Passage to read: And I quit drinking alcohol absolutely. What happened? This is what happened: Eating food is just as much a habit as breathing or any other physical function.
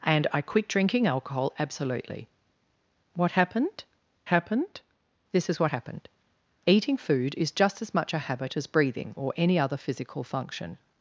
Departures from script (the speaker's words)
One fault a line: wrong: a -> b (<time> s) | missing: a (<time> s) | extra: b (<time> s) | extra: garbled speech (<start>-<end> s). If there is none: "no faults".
extra: happened (4.3 s)